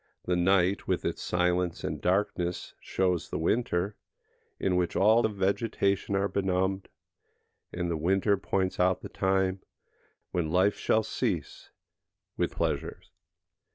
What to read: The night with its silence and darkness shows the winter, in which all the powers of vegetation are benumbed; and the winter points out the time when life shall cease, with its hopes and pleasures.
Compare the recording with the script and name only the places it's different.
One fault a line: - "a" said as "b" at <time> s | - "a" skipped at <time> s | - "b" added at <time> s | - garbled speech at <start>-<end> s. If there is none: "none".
- "the powers" skipped at 5.2 s
- "its hopes and" skipped at 12.6 s